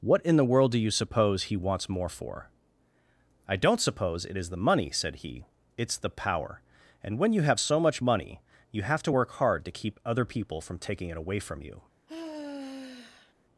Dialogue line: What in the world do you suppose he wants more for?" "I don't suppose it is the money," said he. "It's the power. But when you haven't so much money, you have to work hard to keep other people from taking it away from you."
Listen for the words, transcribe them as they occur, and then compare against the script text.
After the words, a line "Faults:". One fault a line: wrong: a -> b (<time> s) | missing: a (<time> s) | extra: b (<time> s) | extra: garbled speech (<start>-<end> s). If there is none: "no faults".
What in the world do you suppose he wants more for?" "I don't suppose it is the money," said he. "It's the power. And when you have so much money, you have to work hard to keep other people from taking it away from you."
Faults:
wrong: But -> And (7.0 s)
wrong: haven't -> have (7.4 s)